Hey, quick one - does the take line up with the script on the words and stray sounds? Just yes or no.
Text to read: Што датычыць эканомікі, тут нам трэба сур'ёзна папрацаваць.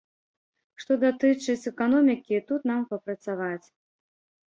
no